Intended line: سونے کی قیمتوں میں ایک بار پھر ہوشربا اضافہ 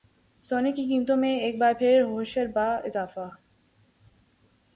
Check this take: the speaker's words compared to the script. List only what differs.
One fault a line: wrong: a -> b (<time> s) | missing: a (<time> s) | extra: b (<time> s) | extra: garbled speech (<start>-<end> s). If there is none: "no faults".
no faults